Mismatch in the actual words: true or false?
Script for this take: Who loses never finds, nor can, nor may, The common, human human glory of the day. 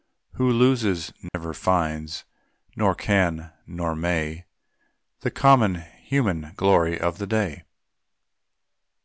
true